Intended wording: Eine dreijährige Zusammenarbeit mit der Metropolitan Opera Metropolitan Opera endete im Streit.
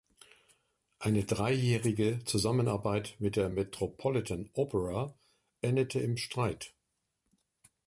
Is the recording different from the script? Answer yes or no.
yes